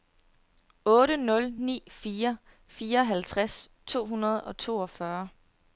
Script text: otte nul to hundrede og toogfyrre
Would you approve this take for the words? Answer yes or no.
no